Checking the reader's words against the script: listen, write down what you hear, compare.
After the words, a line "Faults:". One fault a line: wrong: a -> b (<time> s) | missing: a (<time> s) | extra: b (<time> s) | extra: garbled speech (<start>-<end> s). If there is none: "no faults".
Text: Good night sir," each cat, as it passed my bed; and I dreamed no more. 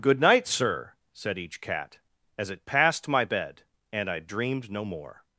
Good night sir," said each cat, as it passed my bed; and I dreamed no more.
Faults:
extra: said (1.1 s)